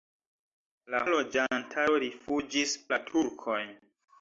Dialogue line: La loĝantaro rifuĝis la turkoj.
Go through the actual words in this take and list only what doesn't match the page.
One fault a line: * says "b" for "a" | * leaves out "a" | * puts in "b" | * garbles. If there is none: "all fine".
all fine